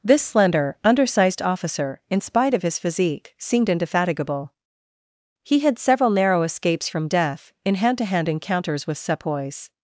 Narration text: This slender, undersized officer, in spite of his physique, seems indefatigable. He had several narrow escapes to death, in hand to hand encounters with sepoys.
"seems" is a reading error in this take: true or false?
true